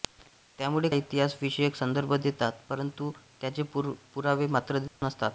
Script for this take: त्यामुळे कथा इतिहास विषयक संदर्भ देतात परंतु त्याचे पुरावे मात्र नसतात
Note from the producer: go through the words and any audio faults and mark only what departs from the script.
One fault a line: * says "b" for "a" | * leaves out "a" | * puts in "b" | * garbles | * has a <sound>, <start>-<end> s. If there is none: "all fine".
* leaves out "कथा"
* has a dropout, 4.9-5.0 s